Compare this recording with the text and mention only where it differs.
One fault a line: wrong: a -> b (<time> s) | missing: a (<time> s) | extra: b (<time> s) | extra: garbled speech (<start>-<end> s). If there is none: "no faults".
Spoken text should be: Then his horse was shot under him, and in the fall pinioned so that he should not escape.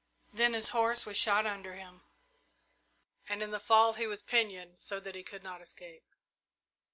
extra: he was (3.9 s)
wrong: should -> could (5.2 s)